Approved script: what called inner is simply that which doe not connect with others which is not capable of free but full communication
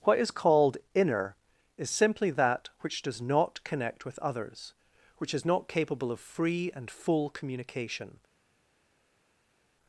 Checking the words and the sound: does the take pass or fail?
fail